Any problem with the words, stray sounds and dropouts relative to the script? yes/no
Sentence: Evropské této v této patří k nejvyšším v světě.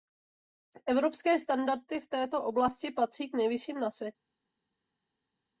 yes